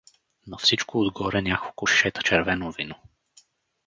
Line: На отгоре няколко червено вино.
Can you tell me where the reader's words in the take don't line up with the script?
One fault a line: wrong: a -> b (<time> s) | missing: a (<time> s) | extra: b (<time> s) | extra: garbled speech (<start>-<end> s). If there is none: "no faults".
extra: всичко (0.6 s)
extra: шишета (1.8 s)